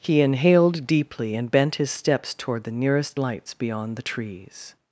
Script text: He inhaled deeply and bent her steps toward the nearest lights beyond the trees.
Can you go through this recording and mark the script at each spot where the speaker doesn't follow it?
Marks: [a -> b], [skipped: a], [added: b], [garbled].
He inhaled deeply and bent [her -> his] steps toward the nearest lights beyond the trees.